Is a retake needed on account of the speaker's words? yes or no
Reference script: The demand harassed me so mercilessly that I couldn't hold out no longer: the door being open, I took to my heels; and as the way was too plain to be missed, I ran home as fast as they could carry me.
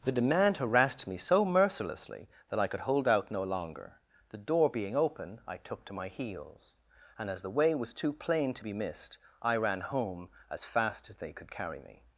yes